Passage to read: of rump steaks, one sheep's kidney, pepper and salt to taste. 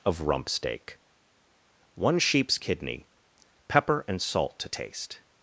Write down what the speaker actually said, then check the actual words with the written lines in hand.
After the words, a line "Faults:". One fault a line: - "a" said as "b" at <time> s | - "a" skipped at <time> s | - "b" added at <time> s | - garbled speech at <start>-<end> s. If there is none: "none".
of rump steak, one sheep's kidney, pepper and salt to taste.
Faults:
- "steaks" said as "steak" at 0.5 s